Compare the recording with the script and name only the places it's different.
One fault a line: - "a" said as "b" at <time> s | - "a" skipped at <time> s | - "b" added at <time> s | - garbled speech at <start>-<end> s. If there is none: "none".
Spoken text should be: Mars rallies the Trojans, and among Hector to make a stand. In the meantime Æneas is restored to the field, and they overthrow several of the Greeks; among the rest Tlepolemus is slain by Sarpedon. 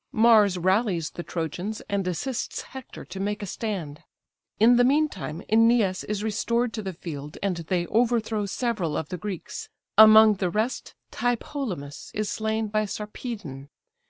- "among" said as "assists" at 2.1 s